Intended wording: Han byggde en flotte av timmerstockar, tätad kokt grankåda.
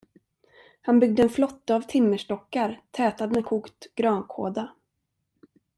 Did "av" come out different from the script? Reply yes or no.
no